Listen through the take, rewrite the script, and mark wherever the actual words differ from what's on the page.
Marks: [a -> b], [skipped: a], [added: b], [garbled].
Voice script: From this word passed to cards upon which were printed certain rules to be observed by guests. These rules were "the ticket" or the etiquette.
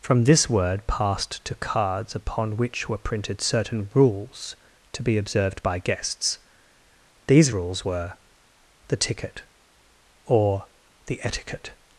From this word passed to cards upon which were printed certain rules to be observed by guests. These rules were "the ticket" or the etiquette.